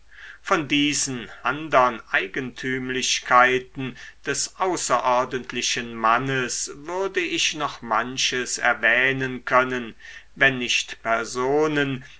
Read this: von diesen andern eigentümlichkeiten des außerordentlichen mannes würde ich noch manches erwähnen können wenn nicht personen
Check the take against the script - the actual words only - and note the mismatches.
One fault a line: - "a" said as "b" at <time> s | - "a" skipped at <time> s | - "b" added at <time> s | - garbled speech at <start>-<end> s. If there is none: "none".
none